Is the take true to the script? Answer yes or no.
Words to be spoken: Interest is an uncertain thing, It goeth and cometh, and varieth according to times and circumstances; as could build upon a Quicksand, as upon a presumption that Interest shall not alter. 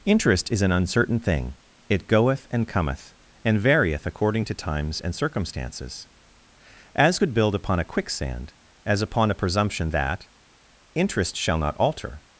yes